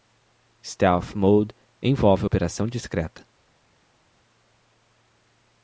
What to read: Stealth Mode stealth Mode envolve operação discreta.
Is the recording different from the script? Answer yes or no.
yes